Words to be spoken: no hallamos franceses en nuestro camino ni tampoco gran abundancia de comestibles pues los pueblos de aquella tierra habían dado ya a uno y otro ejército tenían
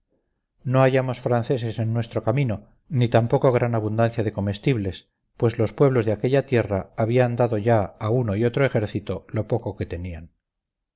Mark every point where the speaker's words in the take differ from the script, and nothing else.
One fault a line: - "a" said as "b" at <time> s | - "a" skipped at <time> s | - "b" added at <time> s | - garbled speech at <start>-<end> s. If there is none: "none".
- "lo poco que" added at 9.3 s